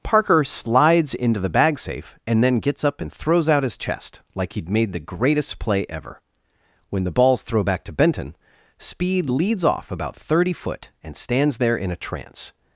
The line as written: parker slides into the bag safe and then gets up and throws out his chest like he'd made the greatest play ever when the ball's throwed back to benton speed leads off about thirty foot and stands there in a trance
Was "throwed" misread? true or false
true